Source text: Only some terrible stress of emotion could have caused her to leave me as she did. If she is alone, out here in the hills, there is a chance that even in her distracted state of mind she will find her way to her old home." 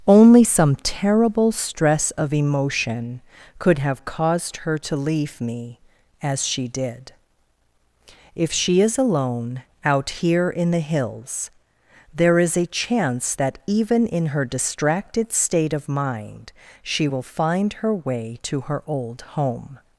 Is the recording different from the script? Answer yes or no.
no